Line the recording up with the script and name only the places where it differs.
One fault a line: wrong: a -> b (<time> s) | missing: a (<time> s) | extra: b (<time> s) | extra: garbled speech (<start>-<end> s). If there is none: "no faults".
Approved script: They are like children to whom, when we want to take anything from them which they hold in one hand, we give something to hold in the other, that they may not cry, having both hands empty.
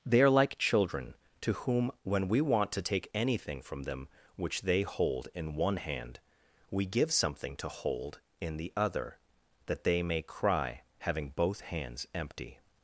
missing: not (10.2 s)